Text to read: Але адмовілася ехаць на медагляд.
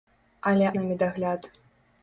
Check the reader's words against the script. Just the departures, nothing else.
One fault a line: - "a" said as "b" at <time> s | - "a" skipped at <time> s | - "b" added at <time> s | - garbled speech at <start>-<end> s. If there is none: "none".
- "адмовілася ехаць" skipped at 0.7 s